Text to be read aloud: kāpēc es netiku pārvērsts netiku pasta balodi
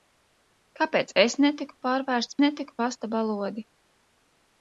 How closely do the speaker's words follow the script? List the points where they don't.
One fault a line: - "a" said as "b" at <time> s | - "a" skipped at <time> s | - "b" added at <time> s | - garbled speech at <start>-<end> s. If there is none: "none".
none